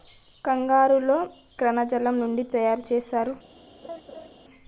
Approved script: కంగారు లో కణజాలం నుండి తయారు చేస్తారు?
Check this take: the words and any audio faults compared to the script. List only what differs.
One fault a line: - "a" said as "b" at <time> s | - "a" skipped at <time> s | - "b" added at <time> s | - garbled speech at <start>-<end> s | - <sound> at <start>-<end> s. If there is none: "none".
- laugh at 3.8-4.3 s